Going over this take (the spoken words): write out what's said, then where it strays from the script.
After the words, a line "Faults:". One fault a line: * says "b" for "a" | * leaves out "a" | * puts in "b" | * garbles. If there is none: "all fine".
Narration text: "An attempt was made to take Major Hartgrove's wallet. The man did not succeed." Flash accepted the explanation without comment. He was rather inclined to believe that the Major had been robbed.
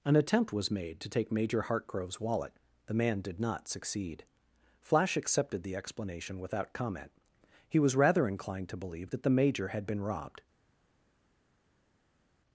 "An attempt was made to take Major Hartgrove's wallet. The man did not succeed." Flash accepted the explanation without comment. He was rather inclined to believe that the Major had been robbed.
Faults:
all fine